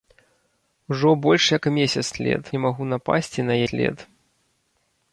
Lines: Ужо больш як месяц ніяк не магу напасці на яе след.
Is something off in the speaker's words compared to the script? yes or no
yes